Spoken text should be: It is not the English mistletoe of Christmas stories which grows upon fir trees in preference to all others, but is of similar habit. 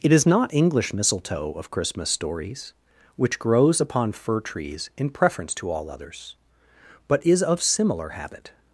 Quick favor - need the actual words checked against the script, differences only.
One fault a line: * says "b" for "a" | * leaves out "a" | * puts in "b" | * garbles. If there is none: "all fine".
* leaves out "the"